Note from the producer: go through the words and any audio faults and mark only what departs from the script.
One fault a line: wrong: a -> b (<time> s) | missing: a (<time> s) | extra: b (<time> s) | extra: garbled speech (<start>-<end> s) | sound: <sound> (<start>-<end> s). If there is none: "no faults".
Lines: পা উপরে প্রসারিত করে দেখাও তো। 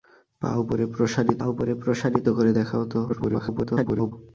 extra: উপরে প্রসারিত (1.4 s)
extra: garbled speech (3.1-4.1 s)